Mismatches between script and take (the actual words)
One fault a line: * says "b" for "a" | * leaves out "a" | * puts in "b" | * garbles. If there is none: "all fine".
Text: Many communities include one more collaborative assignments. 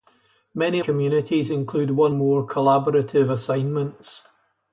all fine